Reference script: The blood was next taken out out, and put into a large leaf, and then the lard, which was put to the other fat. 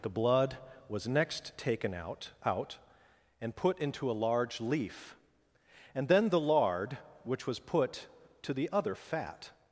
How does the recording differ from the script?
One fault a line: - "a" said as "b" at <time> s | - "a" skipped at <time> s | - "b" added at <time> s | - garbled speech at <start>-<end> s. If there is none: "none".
none